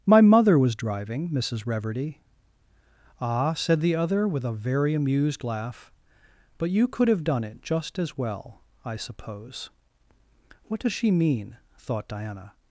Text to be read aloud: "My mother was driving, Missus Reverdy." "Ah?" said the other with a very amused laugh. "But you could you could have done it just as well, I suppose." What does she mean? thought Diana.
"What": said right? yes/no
yes